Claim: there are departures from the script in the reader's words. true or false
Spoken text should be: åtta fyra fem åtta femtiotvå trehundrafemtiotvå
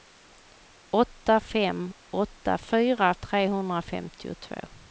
true